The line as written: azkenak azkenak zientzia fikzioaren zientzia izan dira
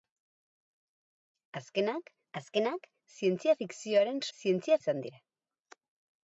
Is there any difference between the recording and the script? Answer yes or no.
no